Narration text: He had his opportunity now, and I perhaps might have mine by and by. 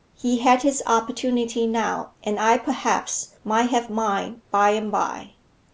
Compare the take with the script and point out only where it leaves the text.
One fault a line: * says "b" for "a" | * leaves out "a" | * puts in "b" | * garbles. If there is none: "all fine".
all fine